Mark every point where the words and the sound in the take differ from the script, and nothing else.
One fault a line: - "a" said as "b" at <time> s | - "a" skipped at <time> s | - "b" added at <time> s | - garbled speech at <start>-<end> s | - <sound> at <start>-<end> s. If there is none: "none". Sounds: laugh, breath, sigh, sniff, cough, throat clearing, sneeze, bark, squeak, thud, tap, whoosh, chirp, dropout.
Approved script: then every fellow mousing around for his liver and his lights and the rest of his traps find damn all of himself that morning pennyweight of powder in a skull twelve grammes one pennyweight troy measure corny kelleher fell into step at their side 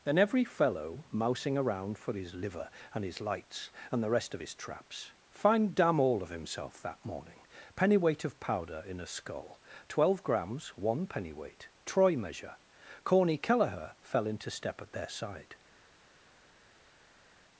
none